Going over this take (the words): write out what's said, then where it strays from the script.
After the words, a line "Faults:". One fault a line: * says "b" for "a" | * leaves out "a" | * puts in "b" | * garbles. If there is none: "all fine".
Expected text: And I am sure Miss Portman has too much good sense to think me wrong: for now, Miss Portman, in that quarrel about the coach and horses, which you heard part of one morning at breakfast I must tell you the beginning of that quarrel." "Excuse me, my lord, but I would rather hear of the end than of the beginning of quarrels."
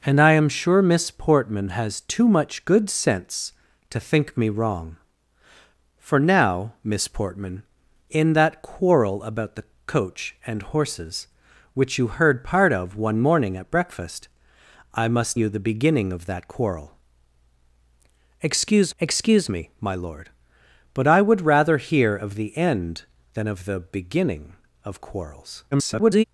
And I am sure Miss Portman has too much good sense to think me wrong: for now, Miss Portman, in that quarrel about the coach and horses, which you heard part of one morning at breakfast I must you the beginning of that quarrel." "Excuse excuse me, my lord, but I would rather hear of the end than of the beginning of quarrels." [garbled]
Faults:
* leaves out "tell"
* puts in "excuse"
* garbles